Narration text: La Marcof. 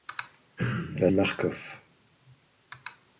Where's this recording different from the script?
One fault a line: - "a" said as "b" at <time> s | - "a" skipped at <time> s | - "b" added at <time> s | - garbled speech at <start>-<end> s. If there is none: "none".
none